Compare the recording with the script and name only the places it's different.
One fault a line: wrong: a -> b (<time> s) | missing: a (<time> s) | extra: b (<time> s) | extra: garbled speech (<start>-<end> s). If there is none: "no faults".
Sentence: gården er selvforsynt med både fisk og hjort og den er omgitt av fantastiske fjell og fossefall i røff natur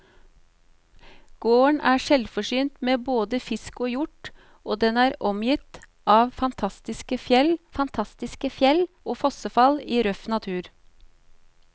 extra: fantastiske fjell (7.8 s)